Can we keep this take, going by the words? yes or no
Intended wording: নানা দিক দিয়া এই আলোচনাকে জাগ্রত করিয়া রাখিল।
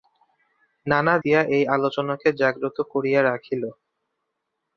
no